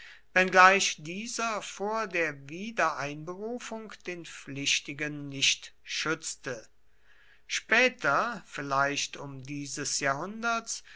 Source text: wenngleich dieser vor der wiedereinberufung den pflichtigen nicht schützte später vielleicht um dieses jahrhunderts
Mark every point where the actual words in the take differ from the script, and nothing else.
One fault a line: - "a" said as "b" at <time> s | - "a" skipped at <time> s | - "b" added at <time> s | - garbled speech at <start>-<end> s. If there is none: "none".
none